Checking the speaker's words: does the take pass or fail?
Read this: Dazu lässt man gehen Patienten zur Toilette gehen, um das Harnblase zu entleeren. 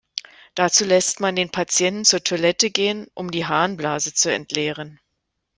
fail